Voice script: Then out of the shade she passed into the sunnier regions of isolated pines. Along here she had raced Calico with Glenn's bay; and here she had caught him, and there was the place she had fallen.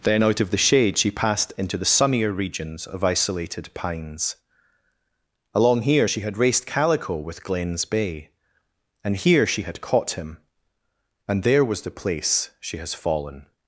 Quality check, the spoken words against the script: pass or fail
fail